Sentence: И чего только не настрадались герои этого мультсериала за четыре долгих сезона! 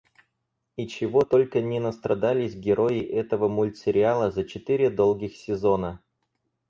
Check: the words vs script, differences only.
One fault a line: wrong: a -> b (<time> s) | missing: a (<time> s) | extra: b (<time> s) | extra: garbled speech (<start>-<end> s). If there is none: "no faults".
no faults